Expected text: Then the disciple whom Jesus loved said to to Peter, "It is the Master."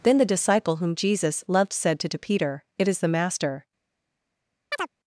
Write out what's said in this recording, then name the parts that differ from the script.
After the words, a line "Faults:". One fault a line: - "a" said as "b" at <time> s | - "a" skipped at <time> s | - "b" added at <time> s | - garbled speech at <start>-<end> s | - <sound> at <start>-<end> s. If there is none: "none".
Then the disciple whom Jesus loved said to to Peter, "It is the Master."
Faults:
- chirp at 4.7-4.9 s